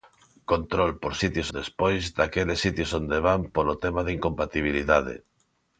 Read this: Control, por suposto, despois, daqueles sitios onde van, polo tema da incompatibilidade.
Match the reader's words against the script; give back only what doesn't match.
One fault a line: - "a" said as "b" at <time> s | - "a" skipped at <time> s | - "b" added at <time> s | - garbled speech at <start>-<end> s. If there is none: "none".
- "suposto" said as "sitios" at 1.2 s